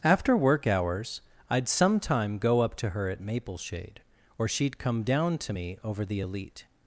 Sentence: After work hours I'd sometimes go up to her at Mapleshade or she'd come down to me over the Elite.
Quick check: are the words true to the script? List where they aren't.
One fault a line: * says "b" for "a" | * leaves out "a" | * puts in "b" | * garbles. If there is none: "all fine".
* says "sometime" for "sometimes"